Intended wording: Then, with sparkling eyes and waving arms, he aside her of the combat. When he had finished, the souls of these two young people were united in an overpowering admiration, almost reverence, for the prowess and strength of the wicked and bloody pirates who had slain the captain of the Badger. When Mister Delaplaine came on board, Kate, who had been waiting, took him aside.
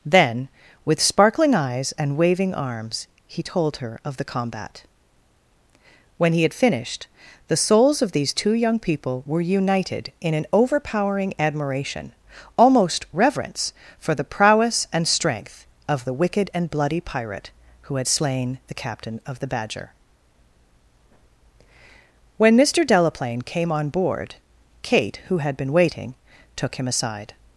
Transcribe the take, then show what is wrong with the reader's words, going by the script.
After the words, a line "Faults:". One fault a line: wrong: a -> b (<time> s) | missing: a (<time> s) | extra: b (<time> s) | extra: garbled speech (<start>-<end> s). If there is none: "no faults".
Then, with sparkling eyes and waving arms, he told her of the combat. When he had finished, the souls of these two young people were united in an overpowering admiration, almost reverence, for the prowess and strength of the wicked and bloody pirate who had slain the captain of the Badger. When Mister Delaplaine came on board, Kate, who had been waiting, took him aside.
Faults:
wrong: aside -> told (3.4 s)
wrong: pirates -> pirate (17.0 s)